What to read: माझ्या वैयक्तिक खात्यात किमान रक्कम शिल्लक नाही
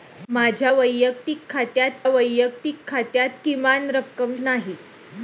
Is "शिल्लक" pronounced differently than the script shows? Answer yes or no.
yes